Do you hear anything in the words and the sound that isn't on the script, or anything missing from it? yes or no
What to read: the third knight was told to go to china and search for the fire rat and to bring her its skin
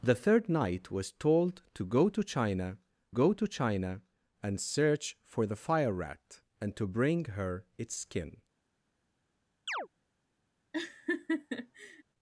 yes